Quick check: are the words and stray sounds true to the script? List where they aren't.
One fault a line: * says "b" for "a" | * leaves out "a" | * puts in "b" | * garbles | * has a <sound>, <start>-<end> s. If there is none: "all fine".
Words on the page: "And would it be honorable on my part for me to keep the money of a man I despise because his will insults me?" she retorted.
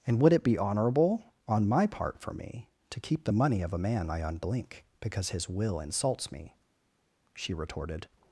* says "unblink" for "despise"